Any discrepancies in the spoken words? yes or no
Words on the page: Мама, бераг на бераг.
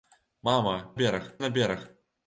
no